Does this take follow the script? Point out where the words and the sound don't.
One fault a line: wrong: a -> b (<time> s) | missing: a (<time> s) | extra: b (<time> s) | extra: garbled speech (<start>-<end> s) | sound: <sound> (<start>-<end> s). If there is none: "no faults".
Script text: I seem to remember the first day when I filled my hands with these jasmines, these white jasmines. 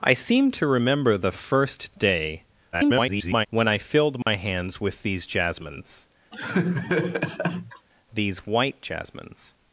extra: garbled speech (2.7-3.5 s)
sound: dropout (4.2-4.3 s)
sound: laugh (6.3-7.9 s)